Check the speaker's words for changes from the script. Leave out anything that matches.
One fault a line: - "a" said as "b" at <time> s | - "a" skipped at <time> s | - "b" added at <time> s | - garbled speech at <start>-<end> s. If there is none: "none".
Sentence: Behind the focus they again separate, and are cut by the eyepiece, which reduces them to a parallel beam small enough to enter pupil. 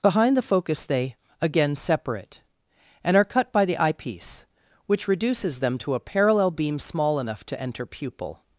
none